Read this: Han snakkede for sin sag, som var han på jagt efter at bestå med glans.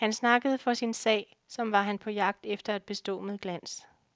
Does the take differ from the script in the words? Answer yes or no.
no